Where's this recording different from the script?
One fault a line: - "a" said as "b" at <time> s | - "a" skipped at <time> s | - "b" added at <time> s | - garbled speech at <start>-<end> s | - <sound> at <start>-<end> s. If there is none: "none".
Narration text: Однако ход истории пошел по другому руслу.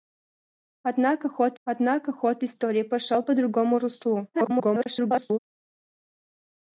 - "однако ход" added at 1.6 s
- garbled speech at 4.3-5.4 s